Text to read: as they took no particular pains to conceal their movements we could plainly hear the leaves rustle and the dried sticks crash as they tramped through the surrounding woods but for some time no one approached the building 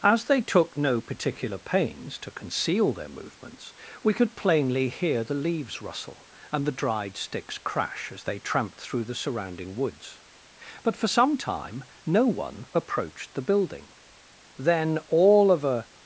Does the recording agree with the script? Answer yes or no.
no